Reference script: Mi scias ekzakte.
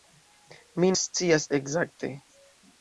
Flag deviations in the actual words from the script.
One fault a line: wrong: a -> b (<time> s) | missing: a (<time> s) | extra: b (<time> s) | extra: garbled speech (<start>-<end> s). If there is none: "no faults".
no faults